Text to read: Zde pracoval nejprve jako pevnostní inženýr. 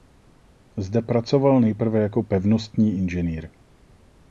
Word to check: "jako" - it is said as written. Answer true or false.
true